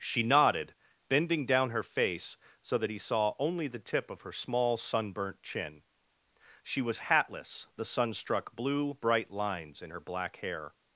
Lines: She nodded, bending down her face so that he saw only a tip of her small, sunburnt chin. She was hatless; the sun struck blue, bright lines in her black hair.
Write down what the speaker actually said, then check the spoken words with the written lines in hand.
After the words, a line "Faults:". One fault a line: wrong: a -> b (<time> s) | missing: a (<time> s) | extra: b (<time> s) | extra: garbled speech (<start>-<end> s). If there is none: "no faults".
She nodded, bending down her face so that he saw only the tip of her small, sunburnt chin. She was hatless; the sun struck blue, bright lines in her black hair.
Faults:
wrong: a -> the (3.7 s)